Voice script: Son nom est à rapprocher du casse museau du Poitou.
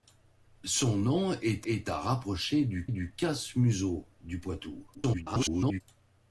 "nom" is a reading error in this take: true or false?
false